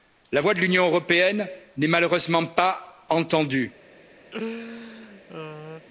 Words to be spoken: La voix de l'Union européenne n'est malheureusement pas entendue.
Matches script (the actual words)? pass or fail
pass